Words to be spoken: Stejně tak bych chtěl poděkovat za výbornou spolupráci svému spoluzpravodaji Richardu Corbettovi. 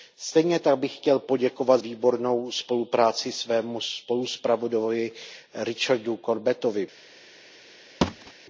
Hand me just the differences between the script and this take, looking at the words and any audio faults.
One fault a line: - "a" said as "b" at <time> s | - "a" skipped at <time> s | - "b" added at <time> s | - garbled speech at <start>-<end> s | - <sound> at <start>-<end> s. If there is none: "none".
- "za" skipped at 1.8 s
- thud at 8.0-8.3 s